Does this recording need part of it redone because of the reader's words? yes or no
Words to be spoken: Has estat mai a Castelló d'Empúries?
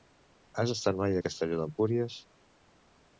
no